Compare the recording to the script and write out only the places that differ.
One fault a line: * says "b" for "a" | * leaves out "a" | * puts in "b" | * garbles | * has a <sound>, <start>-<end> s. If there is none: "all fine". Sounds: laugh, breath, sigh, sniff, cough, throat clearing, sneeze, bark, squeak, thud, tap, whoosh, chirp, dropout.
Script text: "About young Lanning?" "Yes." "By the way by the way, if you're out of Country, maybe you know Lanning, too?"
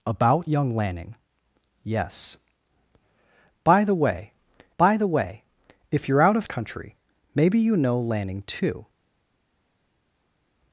all fine